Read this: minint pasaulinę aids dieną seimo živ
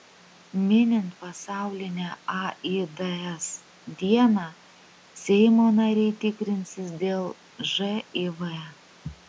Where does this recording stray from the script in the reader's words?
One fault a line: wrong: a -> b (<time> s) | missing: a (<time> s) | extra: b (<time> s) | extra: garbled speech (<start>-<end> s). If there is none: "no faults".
extra: nariai tikrinsis dėl (5.8 s)